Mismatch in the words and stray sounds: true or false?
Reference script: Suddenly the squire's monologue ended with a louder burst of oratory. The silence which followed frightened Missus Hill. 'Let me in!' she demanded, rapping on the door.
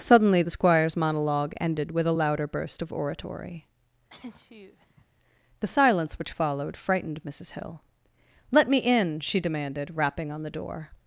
true